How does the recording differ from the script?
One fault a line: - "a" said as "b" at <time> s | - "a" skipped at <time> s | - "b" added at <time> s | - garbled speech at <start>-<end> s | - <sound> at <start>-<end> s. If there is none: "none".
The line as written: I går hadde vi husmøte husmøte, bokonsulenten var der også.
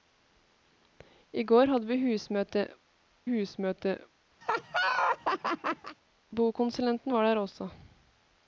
- laugh at 4.4-6.0 s